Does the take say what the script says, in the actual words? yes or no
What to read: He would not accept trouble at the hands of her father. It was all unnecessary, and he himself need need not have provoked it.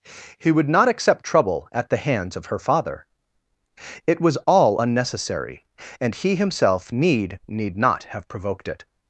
yes